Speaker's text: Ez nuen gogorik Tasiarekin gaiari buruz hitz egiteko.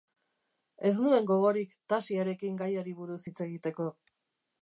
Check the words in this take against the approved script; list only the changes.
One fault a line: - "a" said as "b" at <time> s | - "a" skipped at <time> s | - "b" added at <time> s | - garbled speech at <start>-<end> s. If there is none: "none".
none